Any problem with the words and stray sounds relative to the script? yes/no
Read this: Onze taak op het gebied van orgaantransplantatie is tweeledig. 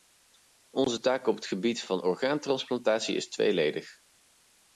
no